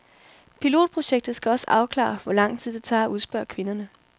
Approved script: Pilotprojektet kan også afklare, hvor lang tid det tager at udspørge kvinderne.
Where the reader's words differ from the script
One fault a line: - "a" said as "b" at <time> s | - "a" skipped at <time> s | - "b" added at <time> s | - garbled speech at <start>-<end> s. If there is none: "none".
- "kan" said as "skal" at 1.4 s